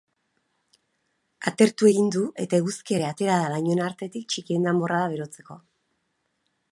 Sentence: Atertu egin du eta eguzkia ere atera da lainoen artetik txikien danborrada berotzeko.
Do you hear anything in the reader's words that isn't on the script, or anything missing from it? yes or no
no